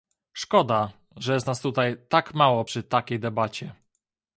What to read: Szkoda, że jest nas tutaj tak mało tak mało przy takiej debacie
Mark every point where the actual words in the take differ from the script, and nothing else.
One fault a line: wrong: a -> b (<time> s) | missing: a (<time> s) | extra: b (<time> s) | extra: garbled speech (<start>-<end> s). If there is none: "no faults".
missing: tak mało (2.6 s)